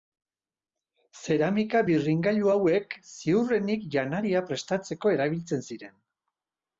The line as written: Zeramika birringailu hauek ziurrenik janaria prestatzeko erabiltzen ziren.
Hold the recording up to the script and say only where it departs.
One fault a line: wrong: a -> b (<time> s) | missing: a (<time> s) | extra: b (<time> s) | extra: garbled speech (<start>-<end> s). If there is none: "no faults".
no faults